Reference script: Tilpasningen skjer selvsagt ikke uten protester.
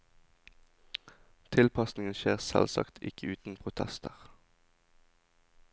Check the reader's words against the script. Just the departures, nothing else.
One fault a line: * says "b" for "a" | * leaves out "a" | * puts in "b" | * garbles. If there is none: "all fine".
all fine